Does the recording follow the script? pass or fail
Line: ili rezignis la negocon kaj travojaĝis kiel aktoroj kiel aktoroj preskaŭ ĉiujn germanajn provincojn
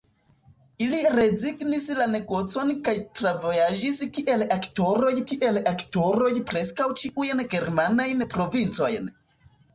pass